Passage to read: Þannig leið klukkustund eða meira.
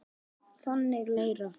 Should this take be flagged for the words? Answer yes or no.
yes